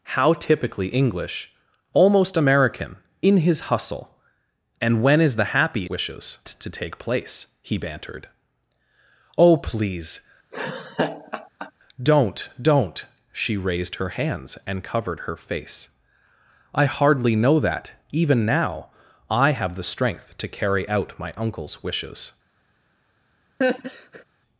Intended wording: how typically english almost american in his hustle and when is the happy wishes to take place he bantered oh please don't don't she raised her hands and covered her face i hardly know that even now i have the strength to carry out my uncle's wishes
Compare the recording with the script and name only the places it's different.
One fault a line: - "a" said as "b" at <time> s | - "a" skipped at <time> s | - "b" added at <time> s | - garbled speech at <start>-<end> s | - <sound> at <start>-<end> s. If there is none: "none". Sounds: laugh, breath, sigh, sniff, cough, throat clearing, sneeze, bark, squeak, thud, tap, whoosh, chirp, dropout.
- laugh at 10.5-11.7 s
- laugh at 23.6-24.2 s